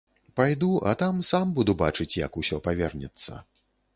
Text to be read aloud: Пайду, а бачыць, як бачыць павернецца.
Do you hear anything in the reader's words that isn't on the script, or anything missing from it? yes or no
yes